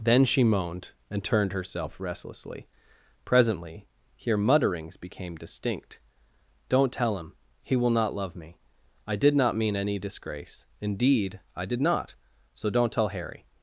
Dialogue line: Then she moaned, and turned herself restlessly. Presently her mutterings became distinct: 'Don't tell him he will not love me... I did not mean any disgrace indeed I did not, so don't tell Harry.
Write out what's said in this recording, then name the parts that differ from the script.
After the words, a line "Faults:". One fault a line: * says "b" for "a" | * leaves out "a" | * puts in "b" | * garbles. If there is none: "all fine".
Then she moaned, and turned herself restlessly. Presently here mutterings became distinct: 'Don't tell him he will not love me... I did not mean any disgrace indeed I did not, so don't tell Harry.
Faults:
* says "here" for "her"